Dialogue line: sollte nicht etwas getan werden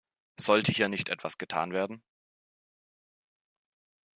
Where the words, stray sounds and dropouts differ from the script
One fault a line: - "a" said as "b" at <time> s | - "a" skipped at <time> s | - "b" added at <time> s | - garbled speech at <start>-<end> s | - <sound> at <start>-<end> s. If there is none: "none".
- "hier" added at 0.7 s